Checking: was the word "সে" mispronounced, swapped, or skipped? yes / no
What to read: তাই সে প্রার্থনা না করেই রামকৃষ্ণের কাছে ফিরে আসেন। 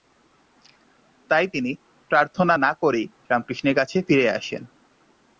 yes